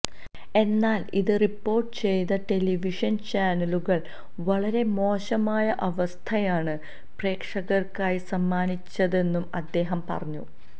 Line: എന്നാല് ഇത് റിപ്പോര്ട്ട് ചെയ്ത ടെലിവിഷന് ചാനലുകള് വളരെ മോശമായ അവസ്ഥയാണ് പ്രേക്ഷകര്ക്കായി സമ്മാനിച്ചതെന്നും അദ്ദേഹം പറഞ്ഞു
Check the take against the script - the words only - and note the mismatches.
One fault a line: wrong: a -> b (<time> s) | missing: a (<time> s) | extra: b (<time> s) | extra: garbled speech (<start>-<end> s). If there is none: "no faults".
no faults